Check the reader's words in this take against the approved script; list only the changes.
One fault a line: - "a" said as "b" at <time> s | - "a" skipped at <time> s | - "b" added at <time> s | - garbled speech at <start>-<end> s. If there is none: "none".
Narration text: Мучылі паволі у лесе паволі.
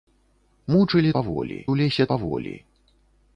none